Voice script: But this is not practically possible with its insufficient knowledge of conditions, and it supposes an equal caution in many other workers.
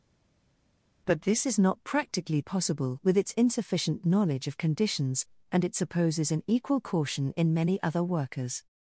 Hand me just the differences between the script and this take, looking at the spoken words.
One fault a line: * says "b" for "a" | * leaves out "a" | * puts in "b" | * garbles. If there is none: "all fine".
all fine